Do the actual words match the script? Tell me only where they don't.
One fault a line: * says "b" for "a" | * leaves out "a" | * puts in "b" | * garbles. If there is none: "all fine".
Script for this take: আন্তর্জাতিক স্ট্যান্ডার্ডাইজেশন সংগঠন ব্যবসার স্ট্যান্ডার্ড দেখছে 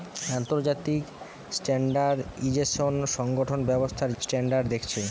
all fine